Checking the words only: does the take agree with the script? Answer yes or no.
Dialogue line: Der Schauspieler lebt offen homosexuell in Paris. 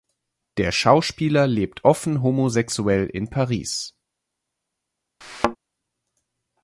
yes